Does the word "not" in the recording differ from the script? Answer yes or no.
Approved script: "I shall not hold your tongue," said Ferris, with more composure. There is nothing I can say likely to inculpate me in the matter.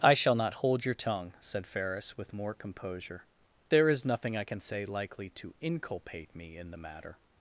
no